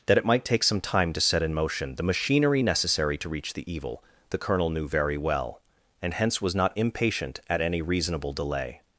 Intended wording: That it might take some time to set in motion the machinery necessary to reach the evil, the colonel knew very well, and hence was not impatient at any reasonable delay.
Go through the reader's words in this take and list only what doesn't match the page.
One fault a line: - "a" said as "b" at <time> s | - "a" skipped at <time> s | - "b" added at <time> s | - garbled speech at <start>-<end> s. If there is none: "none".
none